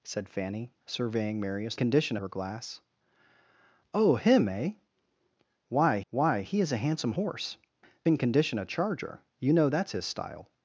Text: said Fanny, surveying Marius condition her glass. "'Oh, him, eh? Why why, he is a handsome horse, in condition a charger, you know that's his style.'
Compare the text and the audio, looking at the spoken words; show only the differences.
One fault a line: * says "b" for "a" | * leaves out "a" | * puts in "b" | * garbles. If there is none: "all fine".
all fine